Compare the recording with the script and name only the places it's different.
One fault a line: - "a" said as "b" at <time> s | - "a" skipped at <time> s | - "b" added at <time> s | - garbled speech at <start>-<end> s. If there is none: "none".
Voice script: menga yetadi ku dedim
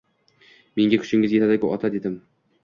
- "kuchingiz" added at 1.0 s
- "ota" added at 1.8 s